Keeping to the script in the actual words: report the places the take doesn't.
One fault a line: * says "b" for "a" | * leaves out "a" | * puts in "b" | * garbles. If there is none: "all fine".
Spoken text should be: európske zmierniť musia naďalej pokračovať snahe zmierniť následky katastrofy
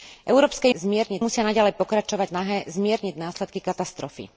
all fine